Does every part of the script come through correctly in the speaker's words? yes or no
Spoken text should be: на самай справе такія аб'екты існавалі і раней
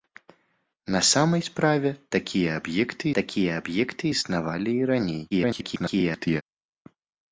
no